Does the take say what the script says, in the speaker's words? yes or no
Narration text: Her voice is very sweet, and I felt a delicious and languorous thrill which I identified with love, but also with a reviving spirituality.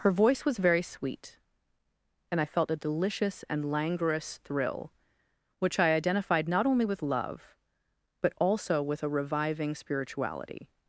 no